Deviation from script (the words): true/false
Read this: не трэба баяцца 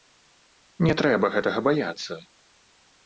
true